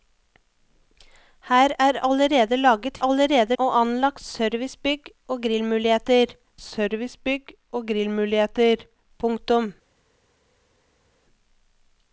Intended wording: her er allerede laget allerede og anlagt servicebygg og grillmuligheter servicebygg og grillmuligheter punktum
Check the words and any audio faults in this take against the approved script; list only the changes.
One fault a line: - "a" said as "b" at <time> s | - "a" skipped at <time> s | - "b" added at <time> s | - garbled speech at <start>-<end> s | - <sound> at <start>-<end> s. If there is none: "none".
none